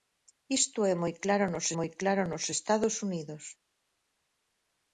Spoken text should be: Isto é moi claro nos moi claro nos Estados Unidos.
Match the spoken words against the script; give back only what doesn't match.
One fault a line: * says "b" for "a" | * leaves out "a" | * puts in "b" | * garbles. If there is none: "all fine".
all fine